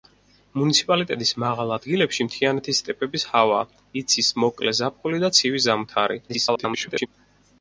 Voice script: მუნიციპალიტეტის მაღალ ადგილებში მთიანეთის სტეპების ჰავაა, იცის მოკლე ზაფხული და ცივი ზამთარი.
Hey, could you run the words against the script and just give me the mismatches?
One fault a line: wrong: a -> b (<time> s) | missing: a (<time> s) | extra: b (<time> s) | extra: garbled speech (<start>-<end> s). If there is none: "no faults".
extra: garbled speech (6.3-7.1 s)